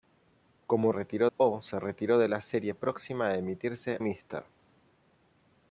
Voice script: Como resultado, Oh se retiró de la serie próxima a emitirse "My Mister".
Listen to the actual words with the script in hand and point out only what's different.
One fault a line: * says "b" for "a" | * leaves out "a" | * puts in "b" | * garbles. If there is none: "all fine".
* says "retiró" for "resultado"
* leaves out "My"